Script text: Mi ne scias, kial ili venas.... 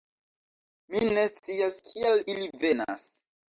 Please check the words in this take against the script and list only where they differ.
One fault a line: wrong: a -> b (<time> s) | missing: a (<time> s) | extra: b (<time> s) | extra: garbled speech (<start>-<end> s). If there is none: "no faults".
no faults